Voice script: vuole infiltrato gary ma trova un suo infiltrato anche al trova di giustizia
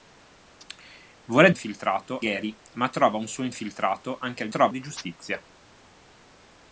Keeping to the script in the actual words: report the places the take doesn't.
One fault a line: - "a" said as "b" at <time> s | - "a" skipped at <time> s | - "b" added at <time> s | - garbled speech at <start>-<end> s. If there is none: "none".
none